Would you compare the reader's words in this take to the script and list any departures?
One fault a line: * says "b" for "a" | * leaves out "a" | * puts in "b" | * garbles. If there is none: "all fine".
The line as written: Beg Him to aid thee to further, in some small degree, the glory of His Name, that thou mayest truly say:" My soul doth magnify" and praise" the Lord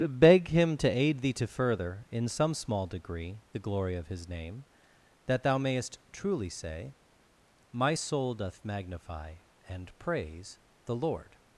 all fine